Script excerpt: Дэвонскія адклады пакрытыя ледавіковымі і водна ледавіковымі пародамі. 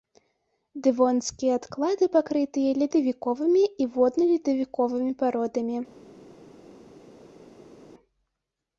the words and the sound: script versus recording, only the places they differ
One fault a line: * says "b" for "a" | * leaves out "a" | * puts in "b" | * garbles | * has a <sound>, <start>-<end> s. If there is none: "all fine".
all fine